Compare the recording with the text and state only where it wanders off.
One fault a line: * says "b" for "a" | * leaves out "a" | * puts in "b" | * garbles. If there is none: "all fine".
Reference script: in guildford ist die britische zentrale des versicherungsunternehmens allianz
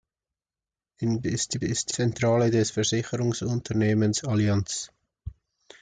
* leaves out "guildford"
* says "ist" for "britische"